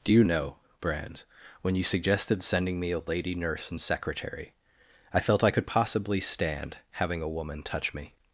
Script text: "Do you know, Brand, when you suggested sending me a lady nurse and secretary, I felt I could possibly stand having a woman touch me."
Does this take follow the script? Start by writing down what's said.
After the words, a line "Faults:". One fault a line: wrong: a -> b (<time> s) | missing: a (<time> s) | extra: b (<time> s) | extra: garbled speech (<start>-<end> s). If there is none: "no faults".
"Do you know, Brand, when you suggested sending me a lady nurse and secretary, I felt I could possibly stand having a woman touch me."
Faults:
no faults